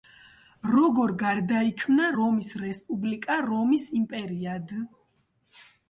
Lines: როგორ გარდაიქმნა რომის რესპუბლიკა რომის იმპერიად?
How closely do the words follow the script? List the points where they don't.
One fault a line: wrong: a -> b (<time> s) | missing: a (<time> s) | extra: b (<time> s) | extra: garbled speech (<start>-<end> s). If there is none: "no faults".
no faults